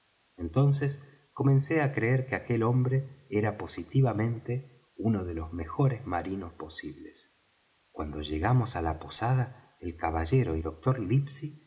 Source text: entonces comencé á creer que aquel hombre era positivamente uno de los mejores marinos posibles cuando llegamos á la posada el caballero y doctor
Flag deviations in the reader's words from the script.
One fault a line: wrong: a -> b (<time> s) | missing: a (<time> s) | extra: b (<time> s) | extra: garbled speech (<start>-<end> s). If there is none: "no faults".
no faults